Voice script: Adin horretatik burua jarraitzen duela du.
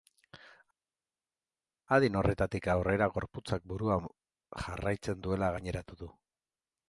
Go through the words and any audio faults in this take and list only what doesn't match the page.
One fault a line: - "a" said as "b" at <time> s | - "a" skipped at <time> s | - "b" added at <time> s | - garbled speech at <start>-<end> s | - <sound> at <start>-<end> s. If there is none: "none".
- "aurrera gorputzak" added at 2.7 s
- "gaineratu" added at 5.6 s